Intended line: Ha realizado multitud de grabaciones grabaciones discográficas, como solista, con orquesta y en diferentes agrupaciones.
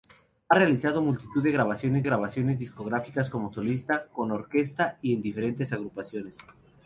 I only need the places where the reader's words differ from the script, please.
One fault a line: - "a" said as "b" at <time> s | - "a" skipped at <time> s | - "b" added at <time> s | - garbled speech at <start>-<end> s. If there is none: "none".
none